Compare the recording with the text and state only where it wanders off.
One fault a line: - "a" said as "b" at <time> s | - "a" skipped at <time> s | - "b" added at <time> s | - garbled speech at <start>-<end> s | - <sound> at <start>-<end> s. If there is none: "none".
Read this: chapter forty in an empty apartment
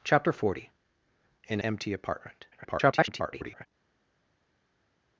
- "an" skipped at 1.6 s
- garbled speech at 2.5-3.7 s